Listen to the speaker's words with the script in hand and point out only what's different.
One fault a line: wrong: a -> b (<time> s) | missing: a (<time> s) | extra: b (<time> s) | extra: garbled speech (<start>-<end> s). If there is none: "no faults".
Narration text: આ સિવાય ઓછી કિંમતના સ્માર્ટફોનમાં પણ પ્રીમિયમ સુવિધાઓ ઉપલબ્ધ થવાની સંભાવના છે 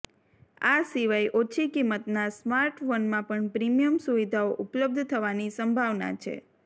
no faults